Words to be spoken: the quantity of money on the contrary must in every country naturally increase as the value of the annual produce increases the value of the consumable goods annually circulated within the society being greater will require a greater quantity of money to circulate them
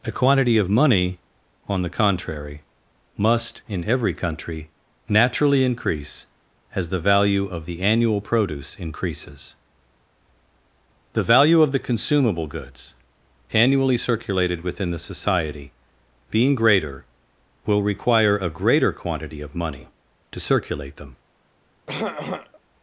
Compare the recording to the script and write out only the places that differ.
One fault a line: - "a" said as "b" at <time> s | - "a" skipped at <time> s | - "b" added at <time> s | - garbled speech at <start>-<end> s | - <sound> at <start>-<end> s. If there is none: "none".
- "the" said as "a" at 0.0 s
- throat clearing at 21.9-22.6 s